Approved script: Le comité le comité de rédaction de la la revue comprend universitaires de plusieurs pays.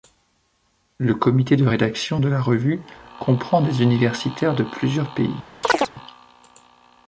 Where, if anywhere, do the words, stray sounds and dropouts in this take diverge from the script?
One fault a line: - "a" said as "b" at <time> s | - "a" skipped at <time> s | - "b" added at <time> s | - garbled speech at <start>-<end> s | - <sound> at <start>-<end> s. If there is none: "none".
- "le comité" skipped at 1.6 s
- "la" skipped at 2.4 s
- "des" added at 3.6 s
- chirp at 5.6-5.9 s